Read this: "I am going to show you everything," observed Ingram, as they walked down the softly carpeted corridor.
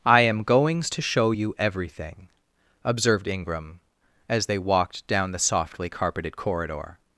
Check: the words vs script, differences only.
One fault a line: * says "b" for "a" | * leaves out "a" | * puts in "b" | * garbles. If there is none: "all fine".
* says "goings" for "going"